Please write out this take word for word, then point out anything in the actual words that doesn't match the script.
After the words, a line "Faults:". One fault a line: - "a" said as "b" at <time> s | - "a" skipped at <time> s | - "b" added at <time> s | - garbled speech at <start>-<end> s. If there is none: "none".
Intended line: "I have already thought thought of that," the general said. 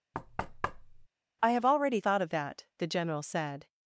"I have already thought of that," the general said.
Faults:
- "thought" skipped at 2.2 s